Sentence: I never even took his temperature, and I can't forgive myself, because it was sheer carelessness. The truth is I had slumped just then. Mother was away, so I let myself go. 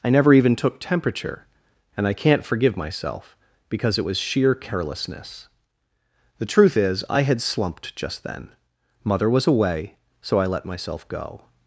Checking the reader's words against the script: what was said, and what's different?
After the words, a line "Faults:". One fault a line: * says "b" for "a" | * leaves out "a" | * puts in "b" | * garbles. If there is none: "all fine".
I never even took temperature, and I can't forgive myself, because it was sheer carelessness. The truth is I had slumped just then. Mother was away, so I let myself go.
Faults:
* leaves out "his"